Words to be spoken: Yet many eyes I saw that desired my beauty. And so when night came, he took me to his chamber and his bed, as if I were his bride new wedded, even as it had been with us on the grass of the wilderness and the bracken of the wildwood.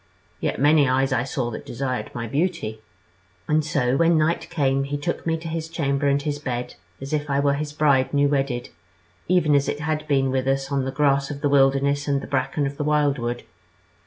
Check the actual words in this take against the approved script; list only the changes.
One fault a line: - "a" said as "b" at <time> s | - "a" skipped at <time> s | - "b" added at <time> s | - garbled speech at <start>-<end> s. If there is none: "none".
none